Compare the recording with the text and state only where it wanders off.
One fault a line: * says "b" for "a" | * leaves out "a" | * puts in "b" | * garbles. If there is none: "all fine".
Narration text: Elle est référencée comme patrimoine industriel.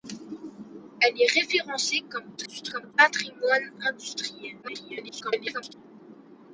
* garbles
* garbles